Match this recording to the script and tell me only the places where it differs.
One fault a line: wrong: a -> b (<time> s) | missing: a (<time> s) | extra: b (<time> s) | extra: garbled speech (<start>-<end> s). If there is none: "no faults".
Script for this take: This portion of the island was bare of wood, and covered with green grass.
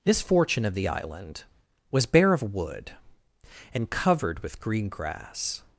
wrong: portion -> fortune (0.2 s)